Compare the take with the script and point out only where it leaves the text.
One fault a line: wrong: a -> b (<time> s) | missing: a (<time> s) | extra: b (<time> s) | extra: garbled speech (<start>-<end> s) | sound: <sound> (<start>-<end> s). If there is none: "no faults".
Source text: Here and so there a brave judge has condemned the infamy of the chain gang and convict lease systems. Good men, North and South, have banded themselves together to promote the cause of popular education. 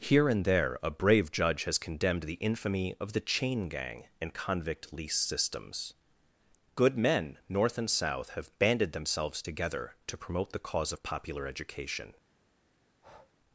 missing: so (0.5 s)
sound: breath (12.9-13.3 s)